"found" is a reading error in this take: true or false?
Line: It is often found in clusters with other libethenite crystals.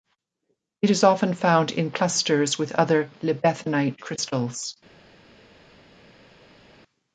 false